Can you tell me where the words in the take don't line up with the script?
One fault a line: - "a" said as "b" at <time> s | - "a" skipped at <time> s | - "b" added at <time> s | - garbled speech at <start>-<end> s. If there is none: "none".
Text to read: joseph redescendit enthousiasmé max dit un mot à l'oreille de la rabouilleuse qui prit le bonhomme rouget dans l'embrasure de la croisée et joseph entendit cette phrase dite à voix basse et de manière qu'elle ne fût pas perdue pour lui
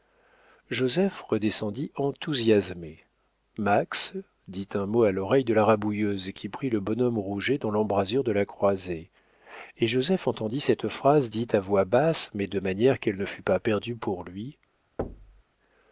- "et" said as "mais" at 12.3 s